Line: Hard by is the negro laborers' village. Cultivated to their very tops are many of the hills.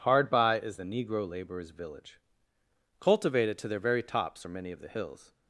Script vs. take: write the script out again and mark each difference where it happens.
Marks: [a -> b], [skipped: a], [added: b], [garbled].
Hard by is the negro laborers' village. Cultivated to their very tops are many of the hills.